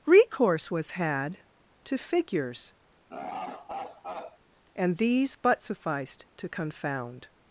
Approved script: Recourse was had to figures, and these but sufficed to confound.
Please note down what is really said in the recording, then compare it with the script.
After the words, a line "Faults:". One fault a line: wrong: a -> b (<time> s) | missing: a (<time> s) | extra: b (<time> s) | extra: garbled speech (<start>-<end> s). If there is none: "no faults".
Recourse was had to figures, and these but sufficed to confound.
Faults:
no faults